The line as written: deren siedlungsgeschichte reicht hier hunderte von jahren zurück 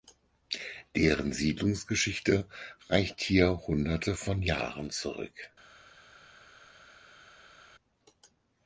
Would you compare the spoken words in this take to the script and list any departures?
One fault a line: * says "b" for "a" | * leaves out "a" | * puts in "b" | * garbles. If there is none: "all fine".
all fine